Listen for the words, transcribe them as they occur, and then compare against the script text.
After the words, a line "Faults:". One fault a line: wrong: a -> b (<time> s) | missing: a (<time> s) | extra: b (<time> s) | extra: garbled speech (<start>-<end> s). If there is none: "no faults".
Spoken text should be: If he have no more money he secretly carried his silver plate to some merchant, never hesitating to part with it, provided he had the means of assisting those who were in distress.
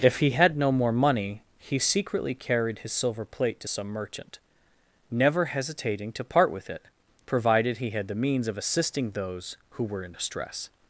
If he had no more money he secretly carried his silver plate to some merchant, never hesitating to part with it, provided he had the means of assisting those who were in distress.
Faults:
wrong: have -> had (0.3 s)